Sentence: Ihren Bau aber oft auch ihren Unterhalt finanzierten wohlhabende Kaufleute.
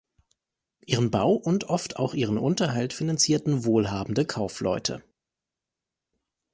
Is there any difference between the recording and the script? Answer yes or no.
yes